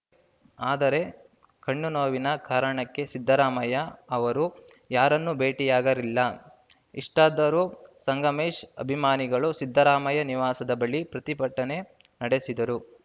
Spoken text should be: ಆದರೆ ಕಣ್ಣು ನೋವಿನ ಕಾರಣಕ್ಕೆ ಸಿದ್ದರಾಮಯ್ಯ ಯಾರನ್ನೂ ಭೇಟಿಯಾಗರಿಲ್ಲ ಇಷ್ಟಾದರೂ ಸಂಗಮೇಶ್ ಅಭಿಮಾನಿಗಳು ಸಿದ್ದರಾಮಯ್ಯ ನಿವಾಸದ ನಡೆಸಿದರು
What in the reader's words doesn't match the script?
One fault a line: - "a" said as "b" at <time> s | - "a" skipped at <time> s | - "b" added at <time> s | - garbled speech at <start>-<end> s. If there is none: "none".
- "ಅವರು" added at 4.2 s
- "ಬಳಿ ಪ್ರತಿಭಟನೆ" added at 10.8 s